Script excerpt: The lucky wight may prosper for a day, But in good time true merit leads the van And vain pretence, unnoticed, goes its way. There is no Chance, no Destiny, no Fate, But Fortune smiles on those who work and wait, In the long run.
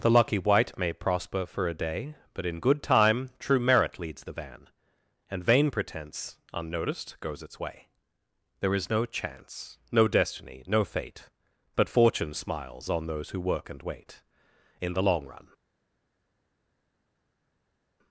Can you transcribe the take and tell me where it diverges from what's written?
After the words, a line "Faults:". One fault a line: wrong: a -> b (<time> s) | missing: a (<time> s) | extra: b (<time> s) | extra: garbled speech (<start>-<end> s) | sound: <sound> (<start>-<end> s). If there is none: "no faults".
The lucky wight may prosper for a day, But in good time true merit leads the van And vain pretence, unnoticed, goes its way. There is no Chance, no Destiny, no Fate, But Fortune smiles on those who work and wait, In the long run.
Faults:
no faults